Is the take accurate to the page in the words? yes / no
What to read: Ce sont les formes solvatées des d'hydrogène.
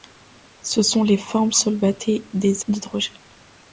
yes